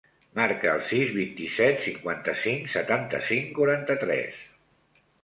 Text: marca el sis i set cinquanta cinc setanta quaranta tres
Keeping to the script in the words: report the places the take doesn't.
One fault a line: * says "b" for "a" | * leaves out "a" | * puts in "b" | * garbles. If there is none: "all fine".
* puts in "vint"
* puts in "cinc"